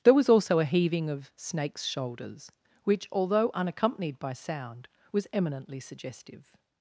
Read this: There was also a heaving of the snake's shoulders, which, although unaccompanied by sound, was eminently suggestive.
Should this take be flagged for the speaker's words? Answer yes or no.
yes